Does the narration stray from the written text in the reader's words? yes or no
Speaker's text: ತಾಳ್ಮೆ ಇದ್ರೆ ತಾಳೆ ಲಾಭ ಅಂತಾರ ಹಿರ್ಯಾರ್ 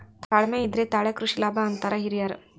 yes